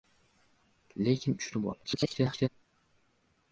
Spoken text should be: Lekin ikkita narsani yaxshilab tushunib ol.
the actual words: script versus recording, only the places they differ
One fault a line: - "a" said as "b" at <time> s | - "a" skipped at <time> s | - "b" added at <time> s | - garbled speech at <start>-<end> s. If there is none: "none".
- "ikkita narsani yaxshilab" skipped at 1.4 s
- garbled speech at 1.8-2.5 s